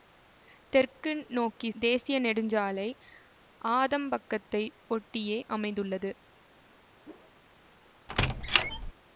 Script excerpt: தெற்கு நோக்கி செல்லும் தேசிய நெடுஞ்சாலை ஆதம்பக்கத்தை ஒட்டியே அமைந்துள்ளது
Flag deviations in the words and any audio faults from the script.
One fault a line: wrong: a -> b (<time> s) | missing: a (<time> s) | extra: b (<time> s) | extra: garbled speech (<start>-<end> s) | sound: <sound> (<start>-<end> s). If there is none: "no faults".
missing: செல்லும் (1.7 s)
sound: whoosh (7.0-7.3 s)
sound: squeak (8.1-8.9 s)